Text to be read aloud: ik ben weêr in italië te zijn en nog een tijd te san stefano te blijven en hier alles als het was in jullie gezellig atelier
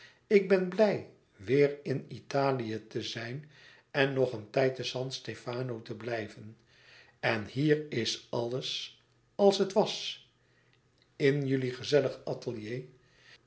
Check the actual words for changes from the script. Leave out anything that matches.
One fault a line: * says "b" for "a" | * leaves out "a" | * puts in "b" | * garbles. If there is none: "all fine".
* puts in "blij"
* puts in "is"